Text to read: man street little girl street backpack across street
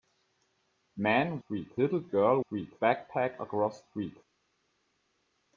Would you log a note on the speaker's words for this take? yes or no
no